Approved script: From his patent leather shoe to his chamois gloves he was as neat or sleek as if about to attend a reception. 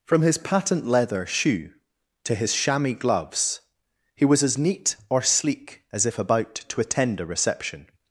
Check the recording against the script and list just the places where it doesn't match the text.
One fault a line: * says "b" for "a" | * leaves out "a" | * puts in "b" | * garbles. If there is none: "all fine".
all fine